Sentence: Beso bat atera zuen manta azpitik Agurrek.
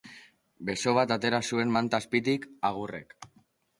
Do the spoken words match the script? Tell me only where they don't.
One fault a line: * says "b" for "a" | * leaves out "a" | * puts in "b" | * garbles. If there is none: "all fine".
all fine